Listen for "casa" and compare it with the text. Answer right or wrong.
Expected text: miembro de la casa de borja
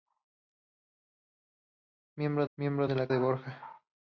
wrong